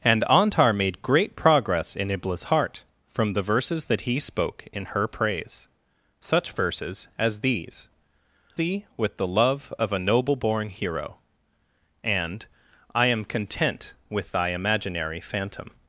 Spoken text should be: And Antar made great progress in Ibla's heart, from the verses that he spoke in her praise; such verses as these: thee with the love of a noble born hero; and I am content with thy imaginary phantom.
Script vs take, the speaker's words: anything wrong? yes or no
no